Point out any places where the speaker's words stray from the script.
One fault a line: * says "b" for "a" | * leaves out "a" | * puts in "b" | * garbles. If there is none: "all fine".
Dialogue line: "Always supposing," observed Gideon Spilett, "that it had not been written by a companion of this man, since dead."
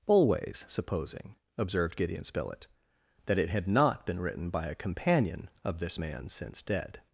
all fine